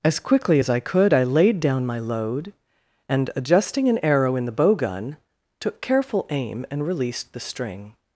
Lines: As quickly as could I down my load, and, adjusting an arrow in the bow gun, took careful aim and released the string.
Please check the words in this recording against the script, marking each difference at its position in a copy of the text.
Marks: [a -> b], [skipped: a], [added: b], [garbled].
As quickly as [added: I] could I [added: laid] down my load, and, adjusting an arrow in the bow gun, took careful aim and released the string.